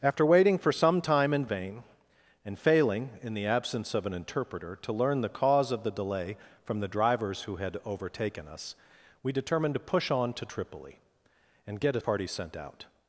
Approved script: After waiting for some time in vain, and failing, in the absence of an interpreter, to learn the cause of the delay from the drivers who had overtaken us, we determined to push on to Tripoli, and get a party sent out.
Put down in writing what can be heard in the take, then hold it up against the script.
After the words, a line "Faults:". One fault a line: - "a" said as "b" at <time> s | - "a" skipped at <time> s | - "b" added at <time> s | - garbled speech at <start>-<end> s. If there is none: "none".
After waiting for some time in vain, and failing, in the absence of an interpreter, to learn the cause of the delay from the drivers who had overtaken us, we determined to push on to Tripoli, and get a party sent out.
Faults:
none